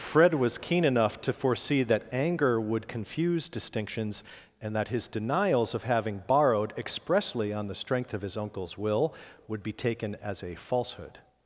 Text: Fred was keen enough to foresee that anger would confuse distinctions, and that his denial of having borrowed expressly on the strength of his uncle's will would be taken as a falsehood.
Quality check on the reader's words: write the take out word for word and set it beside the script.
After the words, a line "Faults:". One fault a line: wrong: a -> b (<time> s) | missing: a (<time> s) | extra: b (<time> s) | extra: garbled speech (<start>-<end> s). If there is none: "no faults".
Fred was keen enough to foresee that anger would confuse distinctions, and that his denials of having borrowed expressly on the strength of his uncle's will would be taken as a falsehood.
Faults:
wrong: denial -> denials (5.1 s)